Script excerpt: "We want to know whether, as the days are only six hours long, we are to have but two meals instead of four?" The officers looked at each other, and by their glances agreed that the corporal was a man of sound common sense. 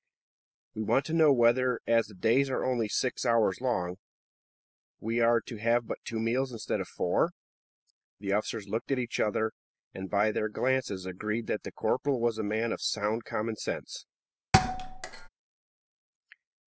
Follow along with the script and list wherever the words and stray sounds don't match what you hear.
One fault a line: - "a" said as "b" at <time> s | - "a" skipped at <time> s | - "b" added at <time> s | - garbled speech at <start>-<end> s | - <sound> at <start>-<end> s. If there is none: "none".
- thud at 14.5-15.3 s